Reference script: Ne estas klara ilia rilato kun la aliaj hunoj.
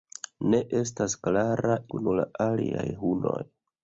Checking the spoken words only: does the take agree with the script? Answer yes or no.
no